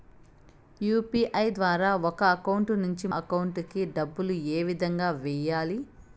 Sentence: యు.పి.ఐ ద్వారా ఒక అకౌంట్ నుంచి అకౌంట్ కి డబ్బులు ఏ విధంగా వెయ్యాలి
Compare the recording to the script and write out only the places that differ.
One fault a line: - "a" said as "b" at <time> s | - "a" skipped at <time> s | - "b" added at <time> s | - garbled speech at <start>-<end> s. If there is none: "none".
none